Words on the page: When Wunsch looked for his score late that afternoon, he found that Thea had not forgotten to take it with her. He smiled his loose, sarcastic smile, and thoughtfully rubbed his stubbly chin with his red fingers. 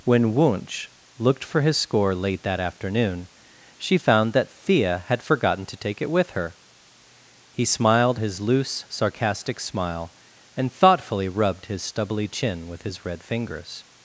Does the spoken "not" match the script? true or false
false